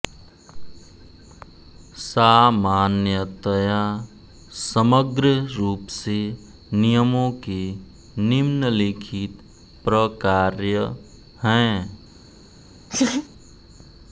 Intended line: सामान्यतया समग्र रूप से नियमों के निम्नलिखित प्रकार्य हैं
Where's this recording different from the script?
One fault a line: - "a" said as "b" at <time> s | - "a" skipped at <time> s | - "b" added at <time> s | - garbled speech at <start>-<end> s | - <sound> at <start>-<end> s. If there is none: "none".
- laugh at 12.9-13.3 s